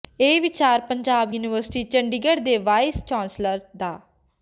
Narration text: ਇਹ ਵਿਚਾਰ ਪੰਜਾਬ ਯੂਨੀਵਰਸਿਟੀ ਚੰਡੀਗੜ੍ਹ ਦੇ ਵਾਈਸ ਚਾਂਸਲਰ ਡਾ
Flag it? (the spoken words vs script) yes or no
no